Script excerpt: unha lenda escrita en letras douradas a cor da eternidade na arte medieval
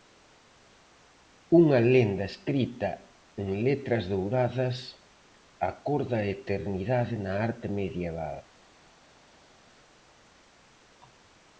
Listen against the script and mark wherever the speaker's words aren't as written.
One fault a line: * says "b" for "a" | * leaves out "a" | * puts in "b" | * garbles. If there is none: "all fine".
all fine